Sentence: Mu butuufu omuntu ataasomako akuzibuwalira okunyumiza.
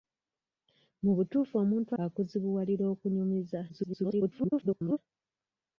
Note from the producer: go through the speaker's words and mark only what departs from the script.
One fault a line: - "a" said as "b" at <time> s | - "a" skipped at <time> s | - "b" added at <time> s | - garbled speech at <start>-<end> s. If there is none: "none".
- "ataasomako" skipped at 1.9 s
- garbled speech at 3.7-5.0 s